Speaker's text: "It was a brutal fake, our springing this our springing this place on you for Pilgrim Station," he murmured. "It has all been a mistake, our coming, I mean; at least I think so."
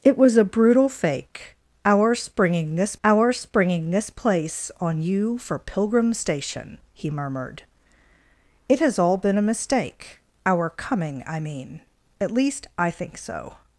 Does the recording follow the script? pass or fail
pass